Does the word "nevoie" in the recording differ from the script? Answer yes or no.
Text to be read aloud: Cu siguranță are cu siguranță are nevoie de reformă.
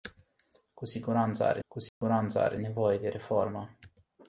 no